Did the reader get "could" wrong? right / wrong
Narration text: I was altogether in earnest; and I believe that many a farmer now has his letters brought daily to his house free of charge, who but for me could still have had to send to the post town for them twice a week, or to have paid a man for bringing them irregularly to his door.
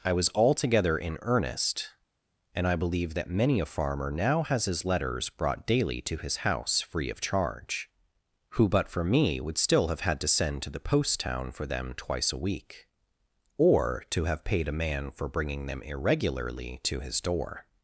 wrong